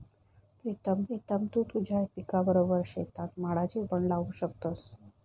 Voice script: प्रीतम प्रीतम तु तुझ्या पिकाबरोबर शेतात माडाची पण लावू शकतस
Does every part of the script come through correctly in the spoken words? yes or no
yes